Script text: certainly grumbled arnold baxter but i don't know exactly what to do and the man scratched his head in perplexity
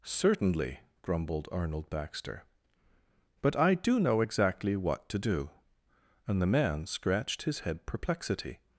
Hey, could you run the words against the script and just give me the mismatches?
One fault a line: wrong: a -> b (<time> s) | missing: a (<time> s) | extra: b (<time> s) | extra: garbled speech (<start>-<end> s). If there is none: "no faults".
wrong: don't -> do (3.8 s)
missing: in (7.9 s)